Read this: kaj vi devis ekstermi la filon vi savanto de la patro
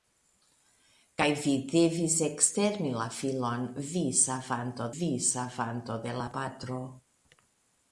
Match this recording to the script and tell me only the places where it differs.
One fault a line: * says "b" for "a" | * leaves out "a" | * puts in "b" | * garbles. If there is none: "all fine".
* puts in "vi savanto"